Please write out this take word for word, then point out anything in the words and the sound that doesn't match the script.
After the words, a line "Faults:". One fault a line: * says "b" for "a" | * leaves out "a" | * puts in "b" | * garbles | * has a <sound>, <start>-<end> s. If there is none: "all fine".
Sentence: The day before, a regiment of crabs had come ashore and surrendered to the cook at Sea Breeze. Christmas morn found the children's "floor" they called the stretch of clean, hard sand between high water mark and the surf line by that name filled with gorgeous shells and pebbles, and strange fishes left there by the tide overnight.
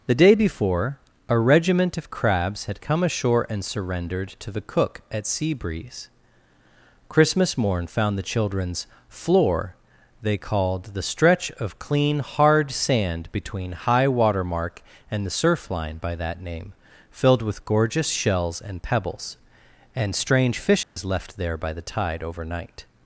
The day before, a regiment of crabs had come ashore and surrendered to the cook at Sea Breeze. Christmas morn found the children's "floor" they called the stretch of clean, hard sand between high water mark and the surf line by that name filled with gorgeous shells and pebbles, and strange fishes left there by the tide overnight.
Faults:
* has a dropout, 20.8-21.0 s